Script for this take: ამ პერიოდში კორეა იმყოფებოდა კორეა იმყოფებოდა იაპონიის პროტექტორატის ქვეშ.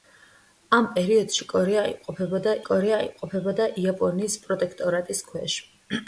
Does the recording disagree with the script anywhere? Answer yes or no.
no